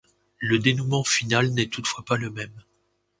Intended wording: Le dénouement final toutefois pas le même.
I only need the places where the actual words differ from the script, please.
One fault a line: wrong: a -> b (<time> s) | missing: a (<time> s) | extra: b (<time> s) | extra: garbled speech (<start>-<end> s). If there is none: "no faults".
extra: n'est (1.5 s)